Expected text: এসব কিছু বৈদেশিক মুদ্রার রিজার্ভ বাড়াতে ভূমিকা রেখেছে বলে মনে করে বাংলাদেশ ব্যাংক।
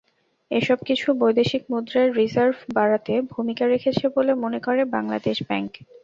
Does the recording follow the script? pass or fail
pass